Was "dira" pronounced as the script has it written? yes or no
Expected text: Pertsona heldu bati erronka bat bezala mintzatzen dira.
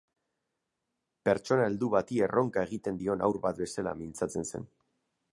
no